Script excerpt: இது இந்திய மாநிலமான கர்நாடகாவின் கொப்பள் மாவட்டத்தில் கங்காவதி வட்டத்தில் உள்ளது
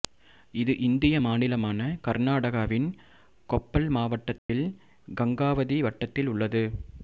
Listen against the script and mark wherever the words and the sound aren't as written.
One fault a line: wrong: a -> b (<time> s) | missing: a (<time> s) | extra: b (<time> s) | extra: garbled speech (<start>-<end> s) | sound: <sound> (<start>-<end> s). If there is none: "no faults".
sound: dropout (4.4-4.5 s)